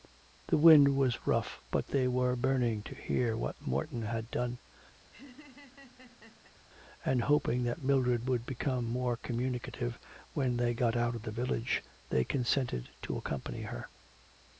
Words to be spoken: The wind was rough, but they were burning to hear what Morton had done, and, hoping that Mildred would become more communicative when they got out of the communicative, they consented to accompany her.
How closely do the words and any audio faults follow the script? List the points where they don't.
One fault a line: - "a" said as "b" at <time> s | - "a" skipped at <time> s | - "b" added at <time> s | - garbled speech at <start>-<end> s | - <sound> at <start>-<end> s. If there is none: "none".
- laugh at 5.0-6.5 s
- "communicative" said as "village" at 11.3 s